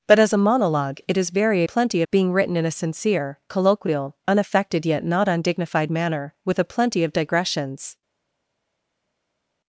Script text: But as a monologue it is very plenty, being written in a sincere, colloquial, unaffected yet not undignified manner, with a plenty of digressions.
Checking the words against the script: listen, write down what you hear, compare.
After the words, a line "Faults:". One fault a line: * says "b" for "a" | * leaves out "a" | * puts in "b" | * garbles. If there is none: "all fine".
But as a monologue it is very plenty, being written in a sincere, colloquial, unaffected yet not undignified manner, with a plenty of digressions.
Faults:
all fine